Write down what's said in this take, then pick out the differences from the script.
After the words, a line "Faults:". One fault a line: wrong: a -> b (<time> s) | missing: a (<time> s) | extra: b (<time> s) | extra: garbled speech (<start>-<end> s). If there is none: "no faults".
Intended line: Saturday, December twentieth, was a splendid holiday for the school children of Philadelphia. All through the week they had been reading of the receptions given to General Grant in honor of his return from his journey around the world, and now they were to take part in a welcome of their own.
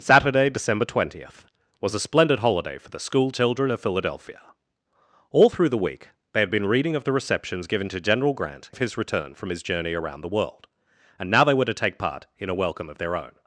Saturday, December twentieth, was a splendid holiday for the school children of Philadelphia. All through the week they had been reading of the receptions given to General Grant of his return from his journey around the world, and now they were to take part in a welcome of their own.
Faults:
missing: in honor (8.7 s)